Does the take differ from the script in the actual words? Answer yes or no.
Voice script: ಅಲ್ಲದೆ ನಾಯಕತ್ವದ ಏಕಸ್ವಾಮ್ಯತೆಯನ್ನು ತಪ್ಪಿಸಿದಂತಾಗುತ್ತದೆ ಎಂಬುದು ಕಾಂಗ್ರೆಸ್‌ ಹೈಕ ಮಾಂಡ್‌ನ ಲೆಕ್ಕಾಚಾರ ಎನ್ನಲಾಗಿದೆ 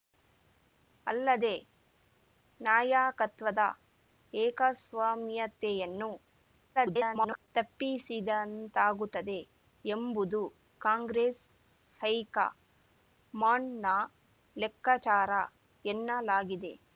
yes